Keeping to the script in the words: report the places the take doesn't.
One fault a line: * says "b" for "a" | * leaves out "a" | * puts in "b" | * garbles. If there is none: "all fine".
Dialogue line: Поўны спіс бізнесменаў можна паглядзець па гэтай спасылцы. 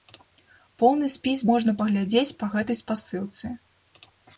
* leaves out "бізнесменаў"